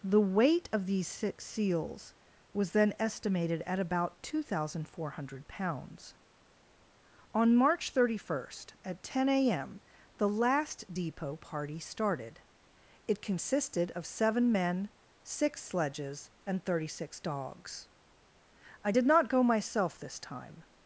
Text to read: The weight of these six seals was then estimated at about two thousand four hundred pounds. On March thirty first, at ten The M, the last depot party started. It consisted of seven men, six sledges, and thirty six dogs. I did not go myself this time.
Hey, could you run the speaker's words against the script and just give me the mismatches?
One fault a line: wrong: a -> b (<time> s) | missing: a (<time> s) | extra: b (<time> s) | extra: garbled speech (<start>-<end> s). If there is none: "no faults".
wrong: The -> A (9.3 s)